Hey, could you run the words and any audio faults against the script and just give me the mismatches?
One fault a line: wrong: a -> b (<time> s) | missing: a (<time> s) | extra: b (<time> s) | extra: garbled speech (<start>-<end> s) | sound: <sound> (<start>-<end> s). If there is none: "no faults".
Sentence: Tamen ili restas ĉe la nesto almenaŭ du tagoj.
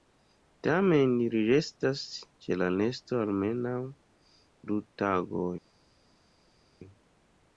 no faults